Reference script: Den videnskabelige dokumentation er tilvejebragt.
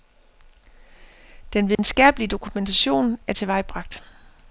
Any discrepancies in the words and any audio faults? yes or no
yes